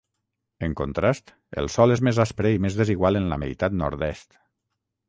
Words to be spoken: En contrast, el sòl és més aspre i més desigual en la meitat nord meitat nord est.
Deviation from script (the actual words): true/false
true